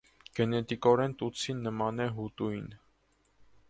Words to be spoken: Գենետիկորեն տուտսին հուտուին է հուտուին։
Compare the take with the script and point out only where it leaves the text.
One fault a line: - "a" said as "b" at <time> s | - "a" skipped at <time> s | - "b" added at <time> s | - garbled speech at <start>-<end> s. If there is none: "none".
- "հուտուին" said as "նման" at 1.7 s